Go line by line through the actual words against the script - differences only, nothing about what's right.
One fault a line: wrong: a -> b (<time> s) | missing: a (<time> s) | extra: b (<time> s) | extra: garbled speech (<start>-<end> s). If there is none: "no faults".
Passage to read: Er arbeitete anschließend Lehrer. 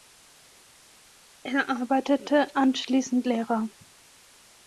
no faults